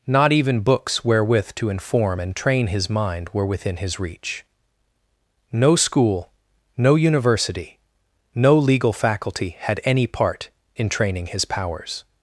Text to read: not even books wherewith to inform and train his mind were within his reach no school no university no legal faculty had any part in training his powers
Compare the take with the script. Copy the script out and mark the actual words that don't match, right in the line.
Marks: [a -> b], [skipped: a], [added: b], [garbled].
not even books wherewith to inform and train his mind were within his reach no school no university no legal faculty had any part in training his powers